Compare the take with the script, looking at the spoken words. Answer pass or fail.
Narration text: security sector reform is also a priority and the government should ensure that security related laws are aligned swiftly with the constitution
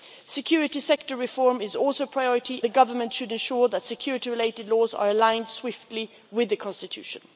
fail